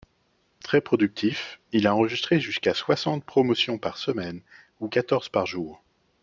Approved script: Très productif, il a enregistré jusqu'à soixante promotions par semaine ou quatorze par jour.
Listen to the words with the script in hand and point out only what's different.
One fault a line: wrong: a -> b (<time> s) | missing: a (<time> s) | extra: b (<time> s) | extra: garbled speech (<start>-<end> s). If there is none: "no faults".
no faults